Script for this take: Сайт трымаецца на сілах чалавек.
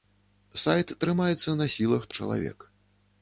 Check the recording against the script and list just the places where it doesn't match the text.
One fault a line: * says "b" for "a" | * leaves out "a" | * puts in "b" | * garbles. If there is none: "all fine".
all fine